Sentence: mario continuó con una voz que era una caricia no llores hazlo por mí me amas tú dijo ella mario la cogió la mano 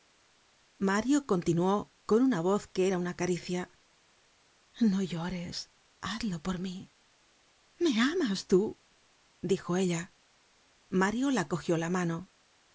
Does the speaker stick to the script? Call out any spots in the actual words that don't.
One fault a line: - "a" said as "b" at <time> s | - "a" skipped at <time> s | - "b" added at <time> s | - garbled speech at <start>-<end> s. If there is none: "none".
none